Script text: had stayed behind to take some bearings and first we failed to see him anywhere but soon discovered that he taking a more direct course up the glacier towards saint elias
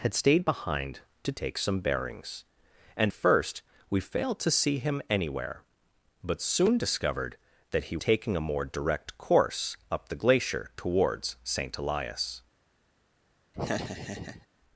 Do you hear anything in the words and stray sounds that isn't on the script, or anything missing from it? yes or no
yes